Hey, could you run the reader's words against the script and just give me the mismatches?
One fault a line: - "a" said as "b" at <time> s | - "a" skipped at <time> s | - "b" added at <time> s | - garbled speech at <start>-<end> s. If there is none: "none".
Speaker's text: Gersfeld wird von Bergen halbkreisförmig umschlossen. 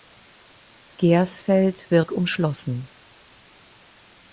- "von Bergen halbkreisförmig" skipped at 2.1 s